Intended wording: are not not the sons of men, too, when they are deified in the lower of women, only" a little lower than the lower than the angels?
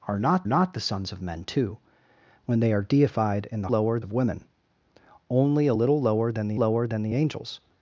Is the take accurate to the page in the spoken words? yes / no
yes